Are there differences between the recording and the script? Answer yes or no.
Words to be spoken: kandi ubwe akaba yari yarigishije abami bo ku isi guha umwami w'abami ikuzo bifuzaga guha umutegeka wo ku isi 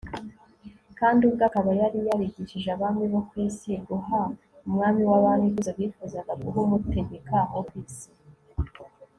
no